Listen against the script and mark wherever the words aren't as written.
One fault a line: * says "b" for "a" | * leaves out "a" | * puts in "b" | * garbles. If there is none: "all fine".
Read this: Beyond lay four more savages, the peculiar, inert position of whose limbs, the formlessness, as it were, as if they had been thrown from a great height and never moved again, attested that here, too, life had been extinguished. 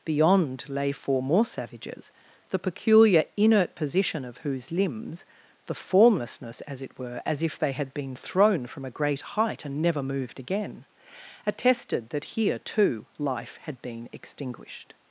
all fine